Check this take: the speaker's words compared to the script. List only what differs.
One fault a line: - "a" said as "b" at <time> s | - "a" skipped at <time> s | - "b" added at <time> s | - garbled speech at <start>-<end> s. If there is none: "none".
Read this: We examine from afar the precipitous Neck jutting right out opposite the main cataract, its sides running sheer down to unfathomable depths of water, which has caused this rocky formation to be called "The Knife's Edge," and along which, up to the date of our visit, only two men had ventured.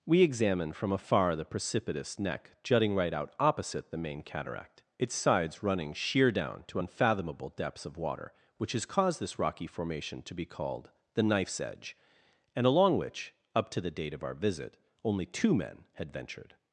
none